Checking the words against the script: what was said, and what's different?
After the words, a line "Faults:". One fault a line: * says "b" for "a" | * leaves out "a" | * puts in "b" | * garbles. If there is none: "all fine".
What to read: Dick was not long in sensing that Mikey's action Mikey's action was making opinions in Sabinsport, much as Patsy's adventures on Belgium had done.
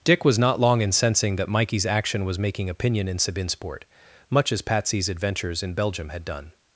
Dick was not long in sensing that Mikey's action was making opinion in Sabinsport, much as Patsy's adventures in Belgium had done.
Faults:
* leaves out "Mikey's action"
* says "opinion" for "opinions"
* says "in" for "on"